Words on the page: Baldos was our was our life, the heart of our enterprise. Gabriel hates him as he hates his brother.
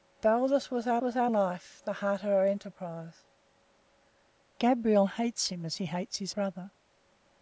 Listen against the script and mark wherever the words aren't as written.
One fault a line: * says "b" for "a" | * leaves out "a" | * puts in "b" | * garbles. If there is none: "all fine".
all fine